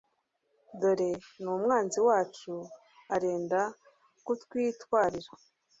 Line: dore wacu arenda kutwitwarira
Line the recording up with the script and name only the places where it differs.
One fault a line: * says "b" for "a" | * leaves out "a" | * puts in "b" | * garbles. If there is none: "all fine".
* puts in "n'umwanzi"